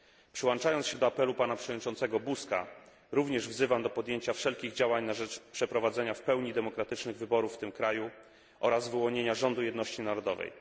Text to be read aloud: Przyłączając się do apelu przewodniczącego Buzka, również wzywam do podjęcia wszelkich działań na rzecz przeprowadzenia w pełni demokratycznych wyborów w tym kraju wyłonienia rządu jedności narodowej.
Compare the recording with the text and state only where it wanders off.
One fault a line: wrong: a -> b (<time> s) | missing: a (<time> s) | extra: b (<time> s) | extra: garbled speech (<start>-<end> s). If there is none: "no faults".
extra: pana (1.3 s)
extra: oraz (8.6 s)